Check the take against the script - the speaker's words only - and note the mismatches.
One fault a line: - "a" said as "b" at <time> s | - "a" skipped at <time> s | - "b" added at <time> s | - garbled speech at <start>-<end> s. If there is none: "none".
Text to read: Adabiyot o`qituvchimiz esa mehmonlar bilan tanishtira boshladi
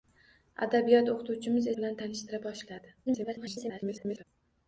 - "esa mehmonlar" skipped at 1.7 s
- garbled speech at 3.1-4.2 s